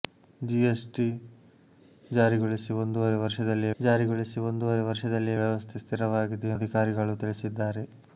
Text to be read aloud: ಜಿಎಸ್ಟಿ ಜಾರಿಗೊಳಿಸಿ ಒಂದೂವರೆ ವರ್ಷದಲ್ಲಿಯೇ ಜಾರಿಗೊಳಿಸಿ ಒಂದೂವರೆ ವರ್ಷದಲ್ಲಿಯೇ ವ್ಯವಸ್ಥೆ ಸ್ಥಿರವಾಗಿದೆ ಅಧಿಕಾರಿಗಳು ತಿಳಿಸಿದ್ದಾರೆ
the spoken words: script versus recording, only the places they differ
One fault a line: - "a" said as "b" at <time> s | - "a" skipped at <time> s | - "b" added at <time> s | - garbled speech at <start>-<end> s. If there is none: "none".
none